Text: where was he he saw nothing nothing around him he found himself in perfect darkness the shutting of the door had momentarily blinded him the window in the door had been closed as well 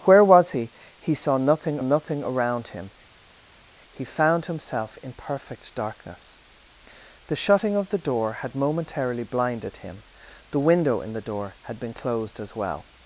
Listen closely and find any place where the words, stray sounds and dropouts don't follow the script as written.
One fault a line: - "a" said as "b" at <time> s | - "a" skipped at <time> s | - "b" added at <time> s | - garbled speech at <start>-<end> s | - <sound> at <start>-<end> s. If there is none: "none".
none